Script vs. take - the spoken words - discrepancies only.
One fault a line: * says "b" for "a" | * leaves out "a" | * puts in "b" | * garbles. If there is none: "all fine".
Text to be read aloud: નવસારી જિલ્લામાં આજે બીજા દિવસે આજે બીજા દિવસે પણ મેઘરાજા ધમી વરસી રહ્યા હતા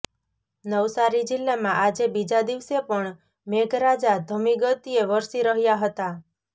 * leaves out "આજે બીજા દિવસે"
* puts in "ગતિએ"